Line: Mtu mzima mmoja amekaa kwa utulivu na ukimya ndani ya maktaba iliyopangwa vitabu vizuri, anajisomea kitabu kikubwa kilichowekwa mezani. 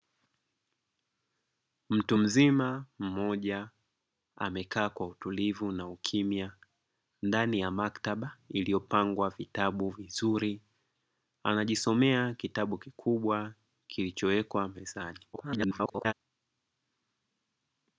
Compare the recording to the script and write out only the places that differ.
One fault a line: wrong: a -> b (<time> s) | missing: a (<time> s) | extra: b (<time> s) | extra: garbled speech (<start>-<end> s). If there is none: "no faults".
extra: garbled speech (15.3-16.1 s)